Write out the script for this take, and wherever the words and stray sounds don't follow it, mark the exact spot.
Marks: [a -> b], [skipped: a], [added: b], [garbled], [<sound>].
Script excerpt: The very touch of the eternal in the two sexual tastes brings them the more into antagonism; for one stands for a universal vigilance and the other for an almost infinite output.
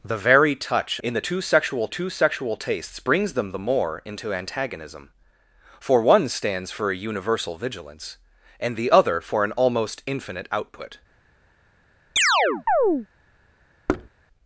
The very touch [of -> in] the [eternal in the -> two sexual] two sexual tastes brings them the more into antagonism; for one stands for a universal vigilance and the other for an almost infinite output. [chirp] [thud]